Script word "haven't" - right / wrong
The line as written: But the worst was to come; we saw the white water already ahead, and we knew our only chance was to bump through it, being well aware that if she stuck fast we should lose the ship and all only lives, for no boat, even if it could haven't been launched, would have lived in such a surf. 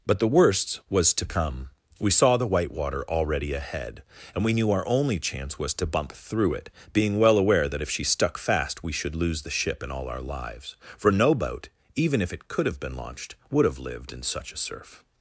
wrong